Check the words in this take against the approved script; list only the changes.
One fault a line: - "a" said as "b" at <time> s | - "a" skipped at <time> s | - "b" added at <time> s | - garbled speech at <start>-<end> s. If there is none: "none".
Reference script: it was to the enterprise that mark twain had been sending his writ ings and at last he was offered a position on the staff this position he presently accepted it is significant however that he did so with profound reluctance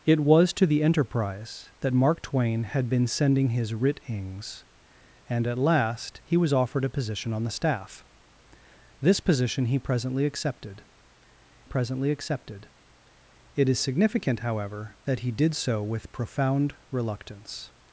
- "presently accepted" added at 11.6 s